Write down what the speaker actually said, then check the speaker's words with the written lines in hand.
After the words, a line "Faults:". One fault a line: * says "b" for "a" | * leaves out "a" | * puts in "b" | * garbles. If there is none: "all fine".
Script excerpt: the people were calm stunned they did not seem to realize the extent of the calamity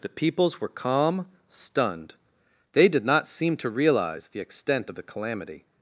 the peoples were calm stunned they did not seem to realize the extent of the calamity
Faults:
* says "peoples" for "people"